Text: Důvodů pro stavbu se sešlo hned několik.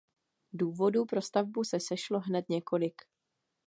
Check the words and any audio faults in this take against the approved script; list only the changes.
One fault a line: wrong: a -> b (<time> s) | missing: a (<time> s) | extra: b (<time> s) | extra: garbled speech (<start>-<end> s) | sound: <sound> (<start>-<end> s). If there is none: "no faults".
no faults